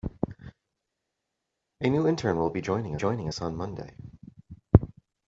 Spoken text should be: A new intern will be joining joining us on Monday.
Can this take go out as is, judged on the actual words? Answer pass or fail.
pass